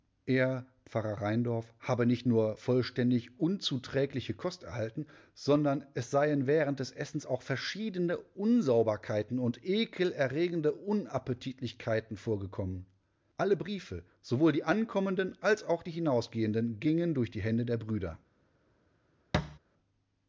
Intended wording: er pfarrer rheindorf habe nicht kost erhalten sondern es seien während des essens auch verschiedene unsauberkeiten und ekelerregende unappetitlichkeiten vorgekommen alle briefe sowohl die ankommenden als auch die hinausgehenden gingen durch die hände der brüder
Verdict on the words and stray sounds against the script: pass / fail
fail